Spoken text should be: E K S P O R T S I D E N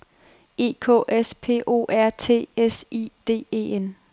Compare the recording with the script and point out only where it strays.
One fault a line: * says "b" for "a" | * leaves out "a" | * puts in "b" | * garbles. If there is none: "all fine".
all fine